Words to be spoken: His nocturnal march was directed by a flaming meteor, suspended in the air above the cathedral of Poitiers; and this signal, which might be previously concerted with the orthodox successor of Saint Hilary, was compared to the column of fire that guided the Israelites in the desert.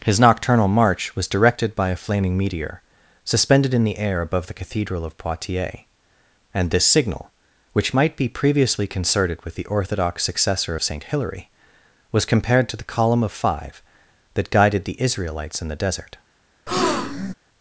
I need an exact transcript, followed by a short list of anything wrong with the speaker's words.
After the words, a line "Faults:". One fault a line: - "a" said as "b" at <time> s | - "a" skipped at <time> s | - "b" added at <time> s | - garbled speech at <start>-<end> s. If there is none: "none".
His nocturnal march was directed by a flaming meteor, suspended in the air above the cathedral of Poitiers; and this signal, which might be previously concerted with the orthodox successor of Saint Hilary, was compared to the column of five that guided the Israelites in the desert.
Faults:
- "fire" said as "five" at 13.3 s